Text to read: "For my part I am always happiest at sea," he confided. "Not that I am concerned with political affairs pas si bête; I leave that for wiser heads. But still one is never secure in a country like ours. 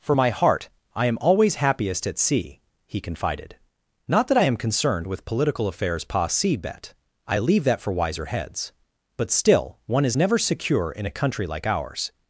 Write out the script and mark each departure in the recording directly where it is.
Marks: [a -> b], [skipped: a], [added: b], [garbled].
"For my [part -> heart] I am always happiest at sea," he confided. "Not that I am concerned with political affairs pas si bête; I leave that for wiser heads. But still one is never secure in a country like ours.